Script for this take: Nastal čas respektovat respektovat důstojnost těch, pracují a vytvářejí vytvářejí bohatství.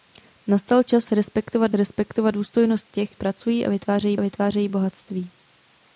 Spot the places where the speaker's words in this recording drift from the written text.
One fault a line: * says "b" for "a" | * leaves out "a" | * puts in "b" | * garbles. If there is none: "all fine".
all fine